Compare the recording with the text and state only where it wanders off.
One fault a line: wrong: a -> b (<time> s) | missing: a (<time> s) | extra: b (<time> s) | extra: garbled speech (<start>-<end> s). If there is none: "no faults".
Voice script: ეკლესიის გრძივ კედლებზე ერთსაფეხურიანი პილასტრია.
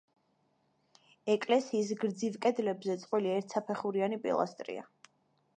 extra: წყვილი (3.0 s)